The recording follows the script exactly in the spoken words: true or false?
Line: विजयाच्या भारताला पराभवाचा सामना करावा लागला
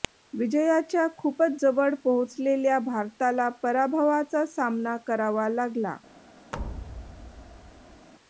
false